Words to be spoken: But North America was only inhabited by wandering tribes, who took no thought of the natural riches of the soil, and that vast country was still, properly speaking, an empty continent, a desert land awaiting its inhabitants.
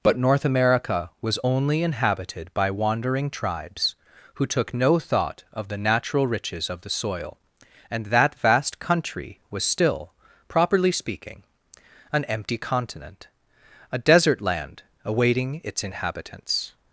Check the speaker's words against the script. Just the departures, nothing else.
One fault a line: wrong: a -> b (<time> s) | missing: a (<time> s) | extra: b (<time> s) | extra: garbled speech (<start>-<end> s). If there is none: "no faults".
no faults